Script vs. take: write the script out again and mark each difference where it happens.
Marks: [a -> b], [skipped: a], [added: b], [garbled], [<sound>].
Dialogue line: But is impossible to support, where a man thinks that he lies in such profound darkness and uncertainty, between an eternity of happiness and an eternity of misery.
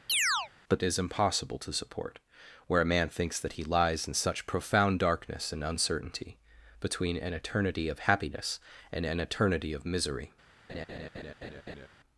[chirp] But is impossible to support, where a man thinks that he lies in such profound darkness and uncertainty, between an eternity of happiness and an eternity of misery. [laugh]